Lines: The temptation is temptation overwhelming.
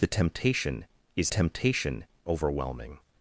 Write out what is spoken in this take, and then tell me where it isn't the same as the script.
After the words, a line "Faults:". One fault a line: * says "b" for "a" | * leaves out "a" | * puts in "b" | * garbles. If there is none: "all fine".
The temptation is temptation overwhelming.
Faults:
all fine